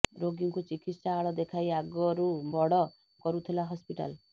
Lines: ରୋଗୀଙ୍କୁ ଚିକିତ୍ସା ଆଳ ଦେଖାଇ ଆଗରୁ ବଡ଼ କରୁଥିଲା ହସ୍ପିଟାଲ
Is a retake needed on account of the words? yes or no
no